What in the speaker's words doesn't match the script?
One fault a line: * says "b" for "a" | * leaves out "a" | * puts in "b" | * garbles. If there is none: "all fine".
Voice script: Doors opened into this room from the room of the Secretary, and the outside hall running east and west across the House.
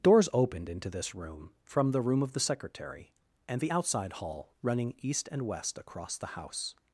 all fine